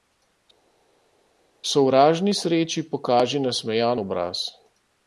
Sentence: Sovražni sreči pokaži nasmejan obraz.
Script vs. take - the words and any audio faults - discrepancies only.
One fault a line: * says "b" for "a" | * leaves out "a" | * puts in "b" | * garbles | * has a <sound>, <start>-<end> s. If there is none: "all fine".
all fine